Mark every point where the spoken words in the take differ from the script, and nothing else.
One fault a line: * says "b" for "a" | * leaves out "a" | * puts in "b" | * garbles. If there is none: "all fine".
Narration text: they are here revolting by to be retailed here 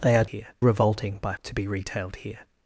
all fine